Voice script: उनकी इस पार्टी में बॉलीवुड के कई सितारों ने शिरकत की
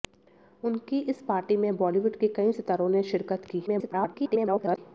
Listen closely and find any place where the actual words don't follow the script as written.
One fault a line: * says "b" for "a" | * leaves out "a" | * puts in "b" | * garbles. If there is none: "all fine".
* garbles